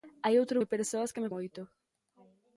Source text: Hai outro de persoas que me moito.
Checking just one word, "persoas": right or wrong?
right